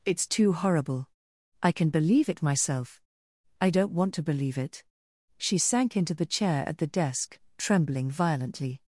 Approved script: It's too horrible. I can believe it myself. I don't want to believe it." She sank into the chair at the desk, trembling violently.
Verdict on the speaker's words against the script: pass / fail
pass